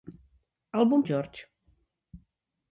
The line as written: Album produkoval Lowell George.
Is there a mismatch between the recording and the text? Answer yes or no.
yes